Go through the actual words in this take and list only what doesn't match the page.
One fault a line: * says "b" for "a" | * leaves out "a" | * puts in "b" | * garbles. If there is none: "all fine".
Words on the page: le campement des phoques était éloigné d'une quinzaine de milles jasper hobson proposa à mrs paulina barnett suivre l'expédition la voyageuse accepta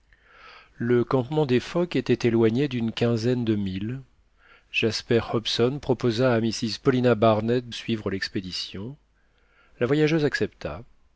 all fine